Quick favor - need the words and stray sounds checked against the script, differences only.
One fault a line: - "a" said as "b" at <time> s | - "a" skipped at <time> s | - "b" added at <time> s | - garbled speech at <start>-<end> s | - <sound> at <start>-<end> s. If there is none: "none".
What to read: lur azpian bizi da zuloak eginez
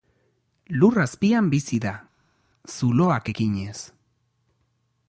none